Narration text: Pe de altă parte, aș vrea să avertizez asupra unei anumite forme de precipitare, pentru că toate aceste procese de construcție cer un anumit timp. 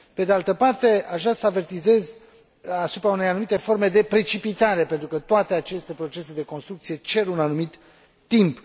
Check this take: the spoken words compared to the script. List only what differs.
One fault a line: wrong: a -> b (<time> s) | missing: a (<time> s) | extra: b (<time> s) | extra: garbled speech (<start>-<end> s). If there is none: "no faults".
no faults